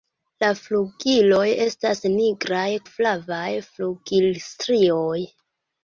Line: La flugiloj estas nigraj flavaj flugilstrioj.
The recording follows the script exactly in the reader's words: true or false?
true